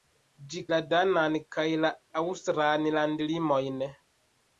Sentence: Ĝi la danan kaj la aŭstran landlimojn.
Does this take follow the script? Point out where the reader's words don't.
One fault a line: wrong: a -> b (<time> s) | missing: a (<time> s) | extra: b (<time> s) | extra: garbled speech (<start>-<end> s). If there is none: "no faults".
no faults